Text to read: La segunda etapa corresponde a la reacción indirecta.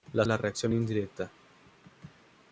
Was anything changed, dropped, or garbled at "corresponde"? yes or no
yes